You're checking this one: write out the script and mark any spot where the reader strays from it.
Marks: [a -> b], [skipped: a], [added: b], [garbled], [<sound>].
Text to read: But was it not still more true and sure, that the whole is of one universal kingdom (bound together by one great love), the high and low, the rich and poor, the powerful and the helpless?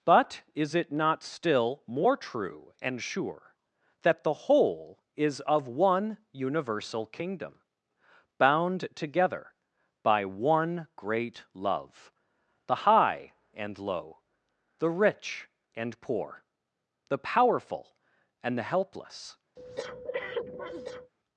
But [was -> is] it not still more true and sure, that the whole is of one universal kingdom (bound together by one great love), the high and low, the rich and poor, the powerful and the helpless? [breath]